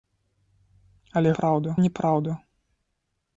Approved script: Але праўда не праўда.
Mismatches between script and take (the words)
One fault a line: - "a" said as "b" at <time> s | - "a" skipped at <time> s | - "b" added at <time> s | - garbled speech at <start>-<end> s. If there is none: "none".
none